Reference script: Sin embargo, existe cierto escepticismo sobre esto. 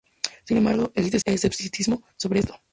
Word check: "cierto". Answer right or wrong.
wrong